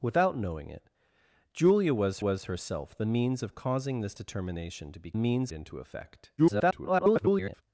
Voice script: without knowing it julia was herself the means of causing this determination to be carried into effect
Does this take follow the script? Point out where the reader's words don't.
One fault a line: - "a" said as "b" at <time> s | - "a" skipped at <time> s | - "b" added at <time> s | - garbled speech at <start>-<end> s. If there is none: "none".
- "was" added at 2.2 s
- "carried" said as "means" at 5.1 s
- garbled speech at 6.4-7.6 s